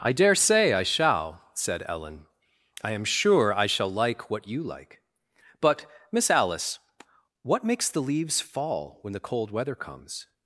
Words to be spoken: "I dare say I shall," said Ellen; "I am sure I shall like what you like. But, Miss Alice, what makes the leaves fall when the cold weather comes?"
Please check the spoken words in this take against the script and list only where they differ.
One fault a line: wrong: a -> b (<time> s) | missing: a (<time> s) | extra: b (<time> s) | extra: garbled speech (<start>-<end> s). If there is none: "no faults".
no faults